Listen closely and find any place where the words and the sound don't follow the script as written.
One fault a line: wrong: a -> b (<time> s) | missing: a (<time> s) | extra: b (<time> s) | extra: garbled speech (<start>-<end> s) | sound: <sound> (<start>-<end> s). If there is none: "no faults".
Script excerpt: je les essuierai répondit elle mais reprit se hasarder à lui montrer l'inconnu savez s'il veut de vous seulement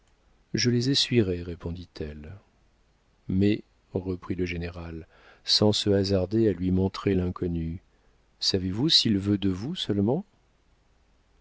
extra: le général sans (4.3 s)
extra: vous (8.7 s)